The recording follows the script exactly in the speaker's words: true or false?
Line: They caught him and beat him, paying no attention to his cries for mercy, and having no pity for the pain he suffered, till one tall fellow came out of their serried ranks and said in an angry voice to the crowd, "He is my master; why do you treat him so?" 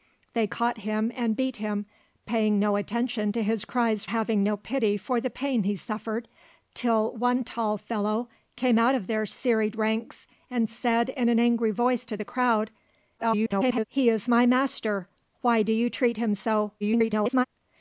false